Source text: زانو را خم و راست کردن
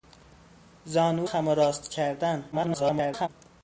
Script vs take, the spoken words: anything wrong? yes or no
yes